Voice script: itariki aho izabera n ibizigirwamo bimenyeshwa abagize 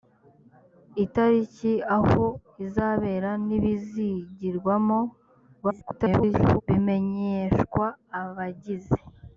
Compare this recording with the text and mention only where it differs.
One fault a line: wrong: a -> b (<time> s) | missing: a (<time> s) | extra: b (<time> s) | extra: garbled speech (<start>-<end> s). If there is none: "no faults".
extra: garbled speech (5.6-6.6 s)